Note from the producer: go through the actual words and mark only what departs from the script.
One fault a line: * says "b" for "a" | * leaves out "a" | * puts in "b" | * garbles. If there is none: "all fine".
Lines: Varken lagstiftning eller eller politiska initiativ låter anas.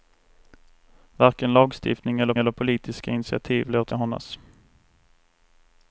all fine